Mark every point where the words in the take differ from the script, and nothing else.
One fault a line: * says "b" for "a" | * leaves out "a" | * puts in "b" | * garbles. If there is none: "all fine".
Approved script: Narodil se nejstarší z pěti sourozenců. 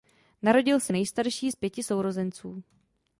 all fine